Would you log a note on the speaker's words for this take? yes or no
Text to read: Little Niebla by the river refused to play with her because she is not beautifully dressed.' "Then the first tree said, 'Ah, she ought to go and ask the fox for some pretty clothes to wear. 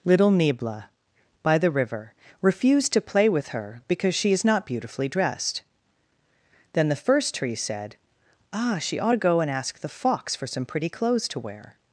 no